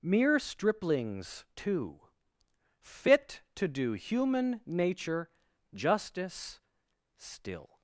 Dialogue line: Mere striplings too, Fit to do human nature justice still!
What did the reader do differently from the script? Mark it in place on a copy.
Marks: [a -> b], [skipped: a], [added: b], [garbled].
Mere striplings too, Fit to do human nature justice still!